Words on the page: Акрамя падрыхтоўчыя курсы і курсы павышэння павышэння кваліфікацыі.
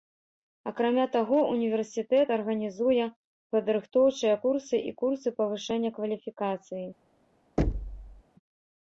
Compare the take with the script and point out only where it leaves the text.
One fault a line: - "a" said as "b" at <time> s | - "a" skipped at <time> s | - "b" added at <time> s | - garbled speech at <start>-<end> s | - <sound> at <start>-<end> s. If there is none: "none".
- "таго універсітэт арганізуе" added at 1.1 s
- "павышэння" skipped at 5.9 s
- thud at 7.6-8.2 s